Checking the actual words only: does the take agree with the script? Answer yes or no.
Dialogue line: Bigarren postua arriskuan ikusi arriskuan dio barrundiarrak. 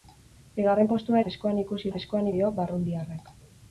yes